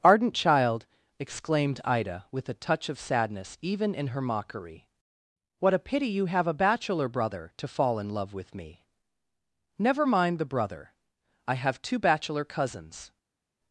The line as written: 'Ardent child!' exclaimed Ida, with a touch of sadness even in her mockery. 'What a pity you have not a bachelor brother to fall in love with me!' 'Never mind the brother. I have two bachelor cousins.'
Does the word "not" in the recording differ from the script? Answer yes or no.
yes